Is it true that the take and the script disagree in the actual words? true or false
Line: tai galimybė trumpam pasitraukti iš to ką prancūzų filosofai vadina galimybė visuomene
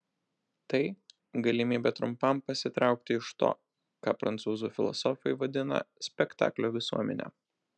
true